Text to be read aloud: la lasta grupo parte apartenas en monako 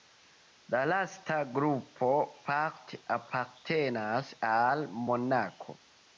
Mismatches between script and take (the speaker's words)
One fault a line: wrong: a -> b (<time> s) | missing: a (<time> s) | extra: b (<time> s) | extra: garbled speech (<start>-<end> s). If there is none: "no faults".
wrong: en -> al (4.5 s)